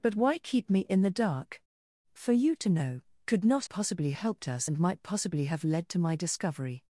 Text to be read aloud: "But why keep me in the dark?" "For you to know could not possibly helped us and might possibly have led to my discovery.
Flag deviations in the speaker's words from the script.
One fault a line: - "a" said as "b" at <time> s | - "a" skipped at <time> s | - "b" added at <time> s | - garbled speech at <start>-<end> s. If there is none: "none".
none